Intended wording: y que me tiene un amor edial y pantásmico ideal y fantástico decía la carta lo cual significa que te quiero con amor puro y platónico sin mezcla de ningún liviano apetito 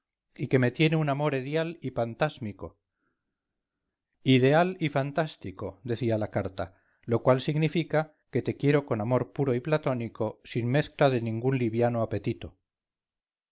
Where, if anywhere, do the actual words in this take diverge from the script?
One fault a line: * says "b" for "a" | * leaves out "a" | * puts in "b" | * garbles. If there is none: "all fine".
all fine